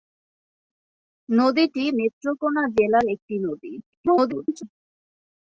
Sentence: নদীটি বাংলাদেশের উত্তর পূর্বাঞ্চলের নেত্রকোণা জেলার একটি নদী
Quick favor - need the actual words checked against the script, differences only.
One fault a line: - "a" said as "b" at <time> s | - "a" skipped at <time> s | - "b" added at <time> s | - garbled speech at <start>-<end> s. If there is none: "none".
- "বাংলাদেশের উত্তর পূর্বাঞ্চলের" skipped at 1.8 s
- garbled speech at 3.8-4.6 s